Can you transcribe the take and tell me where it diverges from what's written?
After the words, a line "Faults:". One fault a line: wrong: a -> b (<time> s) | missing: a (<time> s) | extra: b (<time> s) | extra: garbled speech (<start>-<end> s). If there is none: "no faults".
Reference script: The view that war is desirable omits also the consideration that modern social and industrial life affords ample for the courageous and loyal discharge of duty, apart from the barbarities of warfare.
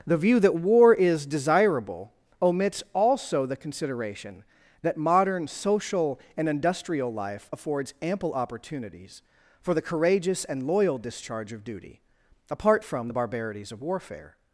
The view that war is desirable omits also the consideration that modern social and industrial life affords ample opportunities for the courageous and loyal discharge of duty, apart from the barbarities of warfare.
Faults:
extra: opportunities (8.3 s)